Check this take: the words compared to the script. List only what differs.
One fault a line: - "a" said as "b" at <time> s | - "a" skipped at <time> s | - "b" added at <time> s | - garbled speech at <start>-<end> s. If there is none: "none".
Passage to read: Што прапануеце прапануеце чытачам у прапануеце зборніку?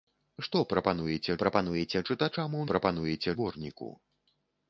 none